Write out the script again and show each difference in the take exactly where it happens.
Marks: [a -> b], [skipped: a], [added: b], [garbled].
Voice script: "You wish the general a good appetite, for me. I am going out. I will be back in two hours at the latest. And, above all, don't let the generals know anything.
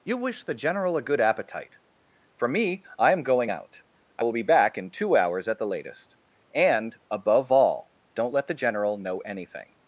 "You wish the general a good appetite, for me. I am going out. I will be back in two hours at the latest. And, above all, don't let the [generals -> general] know anything.